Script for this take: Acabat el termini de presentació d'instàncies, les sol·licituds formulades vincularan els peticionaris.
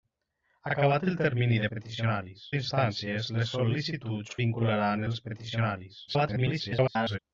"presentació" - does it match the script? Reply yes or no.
no